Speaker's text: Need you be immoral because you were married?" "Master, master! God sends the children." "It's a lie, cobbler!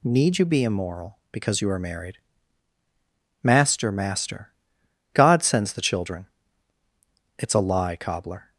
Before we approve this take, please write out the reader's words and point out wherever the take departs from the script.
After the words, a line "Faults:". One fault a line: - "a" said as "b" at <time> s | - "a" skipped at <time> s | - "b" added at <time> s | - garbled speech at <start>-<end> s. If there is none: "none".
Need you be immoral because you are married?" "Master, master! God sends the children." "It's a lie, cobbler!
Faults:
- "were" said as "are" at 1.7 s